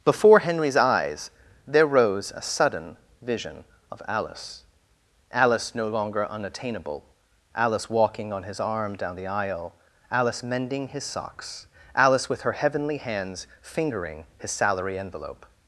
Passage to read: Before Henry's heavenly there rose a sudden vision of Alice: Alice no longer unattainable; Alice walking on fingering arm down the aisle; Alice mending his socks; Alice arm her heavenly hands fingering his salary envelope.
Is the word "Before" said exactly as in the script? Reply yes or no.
yes